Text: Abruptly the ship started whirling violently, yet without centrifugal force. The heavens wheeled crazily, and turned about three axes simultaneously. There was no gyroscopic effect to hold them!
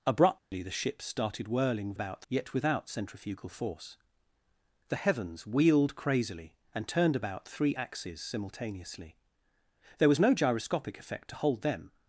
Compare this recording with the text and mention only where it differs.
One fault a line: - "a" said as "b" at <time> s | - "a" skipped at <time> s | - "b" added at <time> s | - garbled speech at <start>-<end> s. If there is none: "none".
- "violently" said as "about" at 1.9 s